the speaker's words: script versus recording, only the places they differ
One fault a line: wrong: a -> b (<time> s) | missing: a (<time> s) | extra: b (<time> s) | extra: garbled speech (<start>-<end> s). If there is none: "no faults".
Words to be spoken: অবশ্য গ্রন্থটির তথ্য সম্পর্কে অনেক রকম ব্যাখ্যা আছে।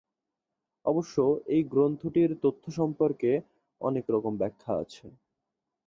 extra: এই (1.5 s)